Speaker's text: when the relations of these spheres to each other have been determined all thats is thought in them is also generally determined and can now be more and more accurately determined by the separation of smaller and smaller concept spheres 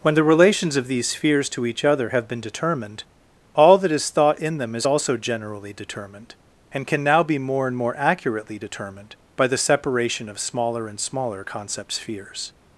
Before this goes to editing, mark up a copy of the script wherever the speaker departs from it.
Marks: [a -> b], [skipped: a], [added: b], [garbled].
when the relations of these spheres to each other have been determined all [thats -> that] is thought in them is also generally determined and can now be more and more accurately determined by the separation of smaller and smaller concept spheres